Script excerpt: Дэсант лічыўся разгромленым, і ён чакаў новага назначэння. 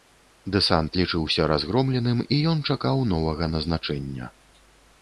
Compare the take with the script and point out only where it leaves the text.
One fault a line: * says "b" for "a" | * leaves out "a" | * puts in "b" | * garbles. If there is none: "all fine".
all fine